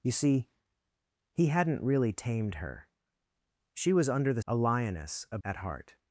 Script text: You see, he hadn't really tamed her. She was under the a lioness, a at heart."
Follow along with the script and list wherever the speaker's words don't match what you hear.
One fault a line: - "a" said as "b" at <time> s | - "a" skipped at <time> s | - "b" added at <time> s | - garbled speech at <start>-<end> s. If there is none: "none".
none